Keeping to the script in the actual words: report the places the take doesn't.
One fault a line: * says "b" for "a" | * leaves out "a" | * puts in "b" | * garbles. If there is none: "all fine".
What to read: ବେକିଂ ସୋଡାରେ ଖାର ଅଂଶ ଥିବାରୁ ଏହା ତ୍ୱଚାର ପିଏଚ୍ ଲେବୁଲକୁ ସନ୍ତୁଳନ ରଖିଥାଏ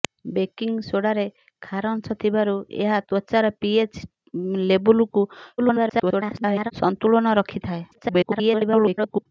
* garbles
* garbles